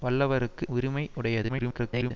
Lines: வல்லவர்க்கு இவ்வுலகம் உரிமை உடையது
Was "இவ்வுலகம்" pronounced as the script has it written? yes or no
no